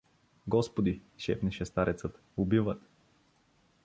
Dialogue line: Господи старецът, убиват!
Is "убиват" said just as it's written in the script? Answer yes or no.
yes